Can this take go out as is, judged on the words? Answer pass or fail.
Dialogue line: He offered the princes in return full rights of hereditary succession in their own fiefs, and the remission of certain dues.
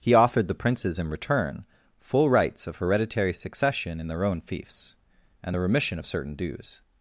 pass